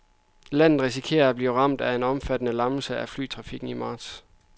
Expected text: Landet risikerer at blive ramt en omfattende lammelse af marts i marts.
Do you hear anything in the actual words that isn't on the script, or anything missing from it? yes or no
yes